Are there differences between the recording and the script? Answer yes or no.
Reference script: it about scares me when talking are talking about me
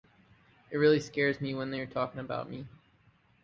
yes